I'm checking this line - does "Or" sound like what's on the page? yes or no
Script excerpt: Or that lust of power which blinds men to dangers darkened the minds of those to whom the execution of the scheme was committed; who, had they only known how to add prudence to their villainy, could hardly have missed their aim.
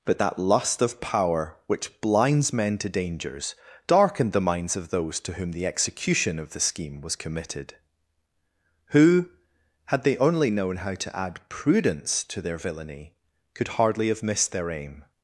no